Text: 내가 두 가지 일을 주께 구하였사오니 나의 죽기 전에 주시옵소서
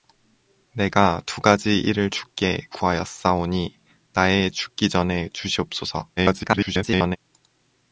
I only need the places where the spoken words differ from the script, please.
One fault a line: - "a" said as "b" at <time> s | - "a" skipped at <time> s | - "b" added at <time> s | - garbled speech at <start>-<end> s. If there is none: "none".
- garbled speech at 6.2-7.2 s